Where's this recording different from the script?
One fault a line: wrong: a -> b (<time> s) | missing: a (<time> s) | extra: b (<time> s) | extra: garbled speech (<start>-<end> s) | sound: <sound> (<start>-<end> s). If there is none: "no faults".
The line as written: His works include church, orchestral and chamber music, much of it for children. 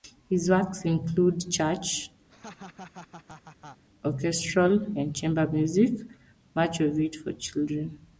sound: laugh (2.3-3.8 s)